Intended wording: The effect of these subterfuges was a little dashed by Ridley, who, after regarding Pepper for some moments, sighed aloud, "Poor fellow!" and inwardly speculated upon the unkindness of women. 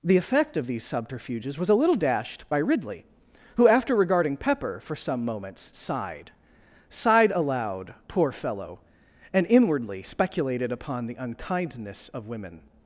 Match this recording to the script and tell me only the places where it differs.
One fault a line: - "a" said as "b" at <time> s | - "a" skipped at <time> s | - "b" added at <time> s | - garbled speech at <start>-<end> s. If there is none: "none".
- "sighed" added at 6.9 s